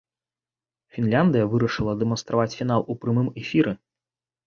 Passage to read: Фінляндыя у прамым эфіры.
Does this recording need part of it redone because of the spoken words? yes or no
yes